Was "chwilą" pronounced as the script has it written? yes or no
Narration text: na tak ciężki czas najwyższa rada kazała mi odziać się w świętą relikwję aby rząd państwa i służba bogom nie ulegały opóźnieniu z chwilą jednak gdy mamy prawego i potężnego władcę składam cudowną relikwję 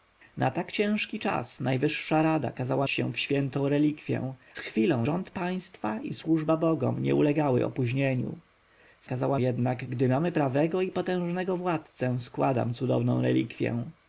no